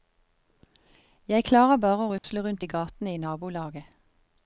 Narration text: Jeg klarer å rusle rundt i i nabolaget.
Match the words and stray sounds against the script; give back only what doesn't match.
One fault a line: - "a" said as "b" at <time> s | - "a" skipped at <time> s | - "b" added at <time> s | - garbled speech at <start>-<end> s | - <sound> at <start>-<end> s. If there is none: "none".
- "bare" added at 1.8 s
- dropout at 2.2-2.2 s
- "gatene" added at 2.7 s